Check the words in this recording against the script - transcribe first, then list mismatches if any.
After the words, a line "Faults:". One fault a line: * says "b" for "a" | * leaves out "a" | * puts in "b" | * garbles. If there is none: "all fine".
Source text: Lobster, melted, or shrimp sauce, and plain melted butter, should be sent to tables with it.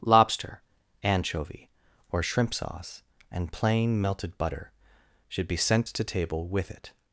Lobster, anchovy, or shrimp sauce, and plain melted butter, should be sent to table with it.
Faults:
* says "anchovy" for "melted"
* says "table" for "tables"